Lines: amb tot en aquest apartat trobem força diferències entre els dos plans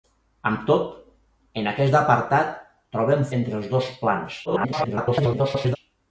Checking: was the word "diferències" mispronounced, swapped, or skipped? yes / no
yes